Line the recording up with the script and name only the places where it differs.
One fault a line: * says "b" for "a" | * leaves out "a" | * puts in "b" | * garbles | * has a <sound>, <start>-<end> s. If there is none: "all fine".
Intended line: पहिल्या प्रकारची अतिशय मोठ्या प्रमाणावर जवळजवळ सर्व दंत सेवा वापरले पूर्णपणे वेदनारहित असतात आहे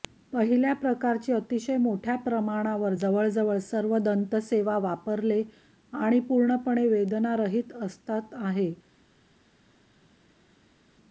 * puts in "आणि"